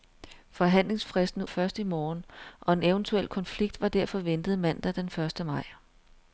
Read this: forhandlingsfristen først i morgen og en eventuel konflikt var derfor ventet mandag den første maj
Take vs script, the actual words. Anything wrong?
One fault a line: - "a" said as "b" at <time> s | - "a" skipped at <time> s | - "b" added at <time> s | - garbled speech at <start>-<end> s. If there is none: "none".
none